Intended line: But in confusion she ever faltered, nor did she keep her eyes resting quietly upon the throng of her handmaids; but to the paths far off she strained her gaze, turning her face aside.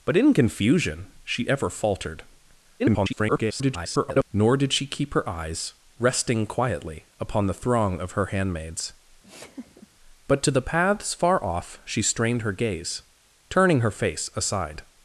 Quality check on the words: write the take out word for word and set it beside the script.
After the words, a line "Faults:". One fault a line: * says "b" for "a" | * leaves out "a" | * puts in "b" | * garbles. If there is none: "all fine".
But in confusion she ever faltered, [garbled] nor did she keep her eyes resting quietly upon the throng of her handmaids; but to the paths far off she strained her gaze, turning her face aside.
Faults:
* garbles